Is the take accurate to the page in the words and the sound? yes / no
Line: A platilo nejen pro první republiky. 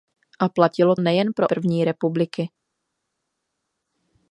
yes